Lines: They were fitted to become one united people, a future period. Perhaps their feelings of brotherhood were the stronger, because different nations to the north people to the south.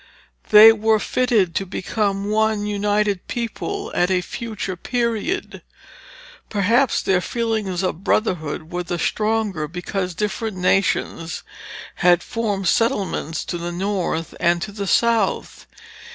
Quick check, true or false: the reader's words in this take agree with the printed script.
false